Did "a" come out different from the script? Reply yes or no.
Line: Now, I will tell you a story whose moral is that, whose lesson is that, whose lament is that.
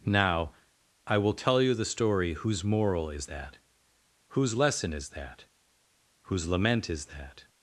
yes